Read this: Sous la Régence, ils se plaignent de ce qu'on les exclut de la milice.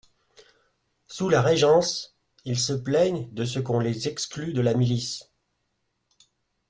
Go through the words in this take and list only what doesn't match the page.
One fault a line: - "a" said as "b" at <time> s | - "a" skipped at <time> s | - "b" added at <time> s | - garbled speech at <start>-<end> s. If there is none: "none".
none